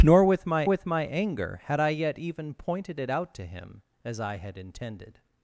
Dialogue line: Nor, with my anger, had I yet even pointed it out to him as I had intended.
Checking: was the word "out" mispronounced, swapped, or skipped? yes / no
no